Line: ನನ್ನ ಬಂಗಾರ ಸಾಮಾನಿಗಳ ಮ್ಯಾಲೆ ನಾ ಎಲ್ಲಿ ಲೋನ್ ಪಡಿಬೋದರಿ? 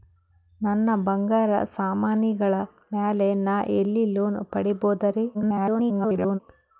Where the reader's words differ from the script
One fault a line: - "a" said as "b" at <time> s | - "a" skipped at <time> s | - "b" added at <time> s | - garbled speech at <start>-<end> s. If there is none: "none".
- garbled speech at 5.3-6.4 s